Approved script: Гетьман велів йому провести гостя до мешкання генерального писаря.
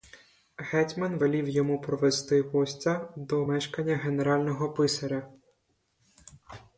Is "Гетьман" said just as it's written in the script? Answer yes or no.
yes